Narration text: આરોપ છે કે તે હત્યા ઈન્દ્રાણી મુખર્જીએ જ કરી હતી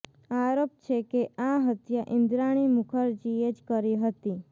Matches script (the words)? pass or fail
fail